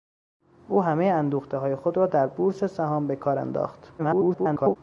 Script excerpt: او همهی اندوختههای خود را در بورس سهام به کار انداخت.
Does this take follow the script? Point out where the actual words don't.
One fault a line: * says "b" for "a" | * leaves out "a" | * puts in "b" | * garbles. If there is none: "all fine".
* garbles